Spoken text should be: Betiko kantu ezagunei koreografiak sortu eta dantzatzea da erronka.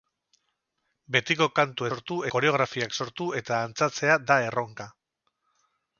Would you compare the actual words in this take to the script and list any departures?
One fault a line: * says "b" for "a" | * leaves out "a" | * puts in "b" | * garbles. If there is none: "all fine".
* says "sortu" for "ezagunei"